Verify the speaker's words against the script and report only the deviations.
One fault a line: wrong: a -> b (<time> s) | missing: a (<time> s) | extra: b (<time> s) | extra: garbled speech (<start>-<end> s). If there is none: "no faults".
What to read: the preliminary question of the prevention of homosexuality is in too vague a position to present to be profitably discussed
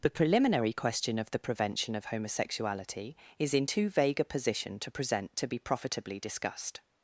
no faults